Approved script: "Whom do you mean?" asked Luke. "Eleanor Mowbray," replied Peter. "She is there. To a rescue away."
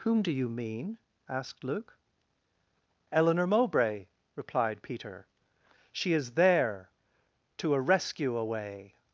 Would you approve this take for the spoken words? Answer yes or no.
yes